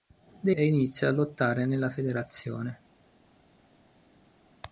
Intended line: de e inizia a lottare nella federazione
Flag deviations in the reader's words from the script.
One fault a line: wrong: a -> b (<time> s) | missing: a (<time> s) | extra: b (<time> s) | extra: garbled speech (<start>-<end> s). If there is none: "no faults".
no faults